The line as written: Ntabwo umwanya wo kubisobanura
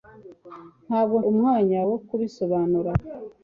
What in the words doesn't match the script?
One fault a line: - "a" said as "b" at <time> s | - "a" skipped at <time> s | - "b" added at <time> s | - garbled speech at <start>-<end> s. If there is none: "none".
none